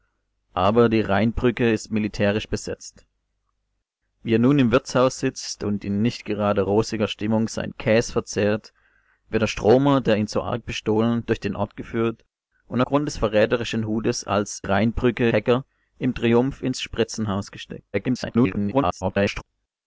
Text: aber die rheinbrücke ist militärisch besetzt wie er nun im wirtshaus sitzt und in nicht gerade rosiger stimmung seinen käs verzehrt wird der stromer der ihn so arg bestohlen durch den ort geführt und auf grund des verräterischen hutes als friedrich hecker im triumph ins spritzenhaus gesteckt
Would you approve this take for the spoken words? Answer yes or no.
no